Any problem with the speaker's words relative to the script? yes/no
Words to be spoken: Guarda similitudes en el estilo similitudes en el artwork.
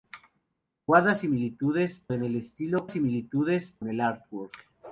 no